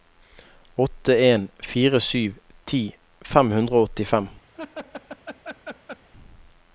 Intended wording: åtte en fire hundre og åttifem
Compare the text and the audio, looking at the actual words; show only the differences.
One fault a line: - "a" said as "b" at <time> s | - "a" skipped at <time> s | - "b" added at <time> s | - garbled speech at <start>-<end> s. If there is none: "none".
- "sju ti fem" added at 2.0 s